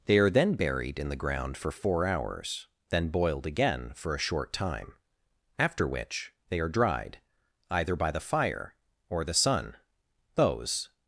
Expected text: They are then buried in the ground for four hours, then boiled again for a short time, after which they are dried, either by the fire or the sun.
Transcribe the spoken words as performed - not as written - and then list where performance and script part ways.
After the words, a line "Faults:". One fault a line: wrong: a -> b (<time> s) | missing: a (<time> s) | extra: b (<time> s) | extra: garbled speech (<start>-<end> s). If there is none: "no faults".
They are then buried in the ground for four hours, then boiled again for a short time, after which they are dried, either by the fire or the sun. Those
Faults:
extra: Those (10.3 s)